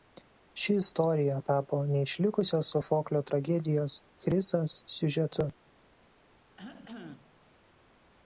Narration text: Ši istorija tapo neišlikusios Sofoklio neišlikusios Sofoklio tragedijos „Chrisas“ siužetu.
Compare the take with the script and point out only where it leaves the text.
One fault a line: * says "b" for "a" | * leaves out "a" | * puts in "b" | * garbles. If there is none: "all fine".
* leaves out "neišlikusios Sofoklio"